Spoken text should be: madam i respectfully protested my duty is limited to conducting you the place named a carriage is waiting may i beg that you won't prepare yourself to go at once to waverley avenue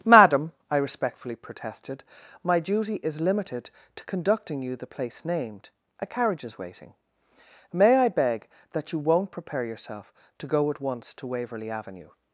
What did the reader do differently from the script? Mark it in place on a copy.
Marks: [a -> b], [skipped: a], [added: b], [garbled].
madam i respectfully protested my duty is limited to conducting you the place named a carriage is waiting may i beg that you won't prepare yourself to go at once to waverley avenue